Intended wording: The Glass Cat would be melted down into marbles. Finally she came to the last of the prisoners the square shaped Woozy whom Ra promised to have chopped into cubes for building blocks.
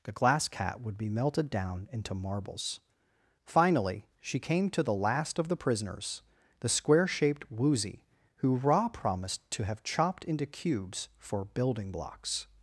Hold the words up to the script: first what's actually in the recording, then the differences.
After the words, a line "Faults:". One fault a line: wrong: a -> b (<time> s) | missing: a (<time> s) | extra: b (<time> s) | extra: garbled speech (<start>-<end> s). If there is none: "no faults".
The Glass Cat would be melted down into marbles. Finally she came to the last of the prisoners the square shaped Woozy who Ra promised to have chopped into cubes for building blocks.
Faults:
wrong: whom -> who (8.4 s)